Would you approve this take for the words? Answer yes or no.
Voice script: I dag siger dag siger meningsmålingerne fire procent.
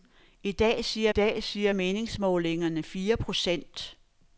yes